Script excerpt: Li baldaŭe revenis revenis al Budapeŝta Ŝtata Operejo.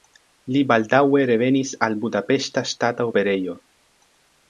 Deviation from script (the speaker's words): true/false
true